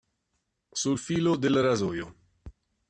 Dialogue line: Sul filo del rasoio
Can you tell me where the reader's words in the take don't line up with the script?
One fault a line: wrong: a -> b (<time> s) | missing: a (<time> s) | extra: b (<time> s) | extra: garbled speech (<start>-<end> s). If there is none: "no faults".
no faults